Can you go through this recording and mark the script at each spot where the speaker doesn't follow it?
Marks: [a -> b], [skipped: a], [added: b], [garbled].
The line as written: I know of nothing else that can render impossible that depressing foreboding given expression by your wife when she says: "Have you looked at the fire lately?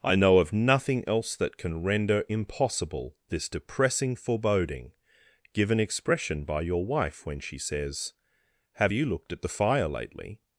I know of nothing else that can render impossible [that -> this] depressing foreboding given expression by your wife when she says: "Have you looked at the fire lately?